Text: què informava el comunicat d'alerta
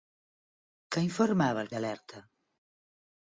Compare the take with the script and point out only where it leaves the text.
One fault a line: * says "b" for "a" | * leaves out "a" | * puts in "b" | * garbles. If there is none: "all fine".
* leaves out "comunicat"